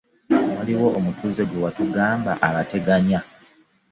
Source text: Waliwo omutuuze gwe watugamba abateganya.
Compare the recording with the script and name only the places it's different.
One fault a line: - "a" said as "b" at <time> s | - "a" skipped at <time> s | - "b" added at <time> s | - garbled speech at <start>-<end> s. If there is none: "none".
none